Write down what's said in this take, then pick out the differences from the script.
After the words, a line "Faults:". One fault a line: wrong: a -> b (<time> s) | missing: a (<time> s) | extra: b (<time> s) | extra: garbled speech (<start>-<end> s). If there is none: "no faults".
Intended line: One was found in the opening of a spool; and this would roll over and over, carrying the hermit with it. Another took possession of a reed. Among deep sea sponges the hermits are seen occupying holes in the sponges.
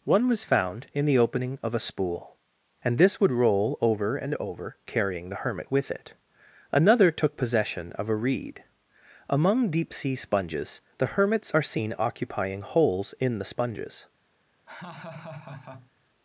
One was found in the opening of a spool; and this would roll over and over, carrying the hermit with it. Another took possession of a reed. Among deep sea sponges the hermits are seen occupying holes in the sponges.
Faults:
no faults